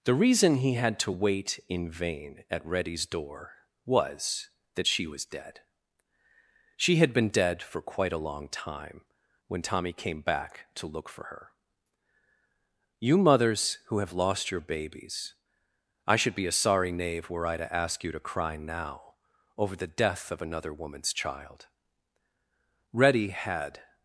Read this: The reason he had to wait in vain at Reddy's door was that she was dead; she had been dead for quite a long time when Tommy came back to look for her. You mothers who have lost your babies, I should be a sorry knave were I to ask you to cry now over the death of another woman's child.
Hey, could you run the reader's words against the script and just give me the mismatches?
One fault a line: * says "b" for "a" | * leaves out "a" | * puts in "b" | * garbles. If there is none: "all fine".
* puts in "Reddy had"